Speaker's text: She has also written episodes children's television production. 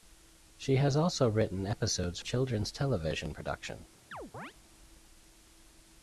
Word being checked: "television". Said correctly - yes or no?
yes